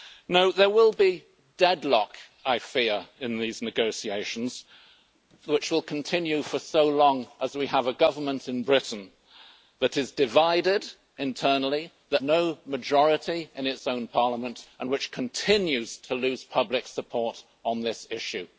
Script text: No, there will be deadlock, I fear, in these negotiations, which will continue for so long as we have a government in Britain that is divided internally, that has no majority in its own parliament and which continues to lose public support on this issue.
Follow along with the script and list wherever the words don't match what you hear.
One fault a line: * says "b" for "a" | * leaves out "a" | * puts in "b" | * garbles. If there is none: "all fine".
* leaves out "has"